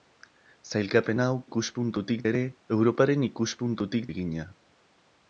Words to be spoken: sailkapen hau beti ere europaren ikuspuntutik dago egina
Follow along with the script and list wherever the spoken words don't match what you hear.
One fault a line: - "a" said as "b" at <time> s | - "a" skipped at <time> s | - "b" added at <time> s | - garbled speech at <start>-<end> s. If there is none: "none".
- "beti" said as "ikuspuntutik" at 1.4 s
- "dago" skipped at 4.1 s